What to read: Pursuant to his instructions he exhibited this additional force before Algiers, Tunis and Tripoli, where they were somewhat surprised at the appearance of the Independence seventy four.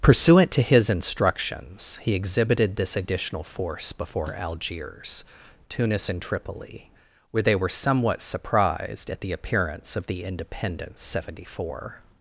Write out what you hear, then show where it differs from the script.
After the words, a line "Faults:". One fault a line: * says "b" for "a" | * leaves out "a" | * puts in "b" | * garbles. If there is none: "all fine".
Pursuant to his instructions he exhibited this additional force before Algiers, Tunis and Tripoli, where they were somewhat surprised at the appearance of the Independence seventy four.
Faults:
all fine